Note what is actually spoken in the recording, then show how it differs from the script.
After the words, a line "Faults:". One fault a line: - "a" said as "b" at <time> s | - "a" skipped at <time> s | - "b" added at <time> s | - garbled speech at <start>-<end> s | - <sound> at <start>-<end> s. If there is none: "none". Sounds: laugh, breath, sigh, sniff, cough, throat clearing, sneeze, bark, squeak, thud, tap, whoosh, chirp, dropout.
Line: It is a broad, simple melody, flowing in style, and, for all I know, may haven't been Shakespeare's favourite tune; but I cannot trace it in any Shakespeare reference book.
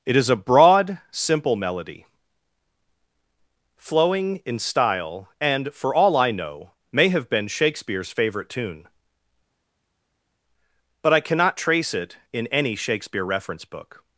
It is a broad, simple melody, flowing in style, and, for all I know, may have been Shakespeare's favourite tune; but I cannot trace it in any Shakespeare reference book.
Faults:
- "haven't" said as "have" at 7.1 s